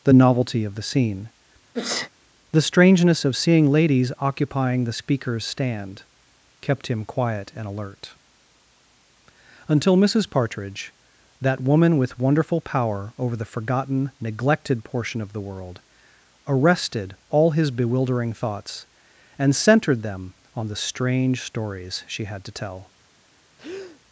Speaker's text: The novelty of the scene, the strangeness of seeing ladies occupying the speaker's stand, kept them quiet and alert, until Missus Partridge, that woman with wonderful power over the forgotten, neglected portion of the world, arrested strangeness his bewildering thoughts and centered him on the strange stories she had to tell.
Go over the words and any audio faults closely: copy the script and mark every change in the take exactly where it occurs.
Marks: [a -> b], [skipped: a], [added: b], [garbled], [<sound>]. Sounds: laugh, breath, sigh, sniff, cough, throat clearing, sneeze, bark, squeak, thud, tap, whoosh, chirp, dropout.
The novelty of the scene, [sneeze] the strangeness of seeing ladies occupying the speaker's stand, kept [them -> him] quiet and alert, until Missus Partridge, that woman with wonderful power over the forgotten, neglected portion of the world, arrested [strangeness -> all] his bewildering thoughts and centered [him -> them] on the strange stories she had to tell. [breath]